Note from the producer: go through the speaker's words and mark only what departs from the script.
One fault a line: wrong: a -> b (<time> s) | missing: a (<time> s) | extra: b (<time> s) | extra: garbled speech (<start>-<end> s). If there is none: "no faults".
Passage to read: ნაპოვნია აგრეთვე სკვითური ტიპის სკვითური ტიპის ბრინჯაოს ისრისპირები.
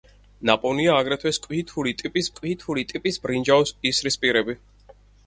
no faults